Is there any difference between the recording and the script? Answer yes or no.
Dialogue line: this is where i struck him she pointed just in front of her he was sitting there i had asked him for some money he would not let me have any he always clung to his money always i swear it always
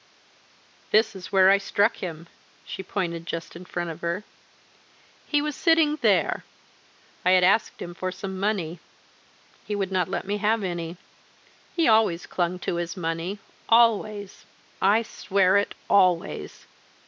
no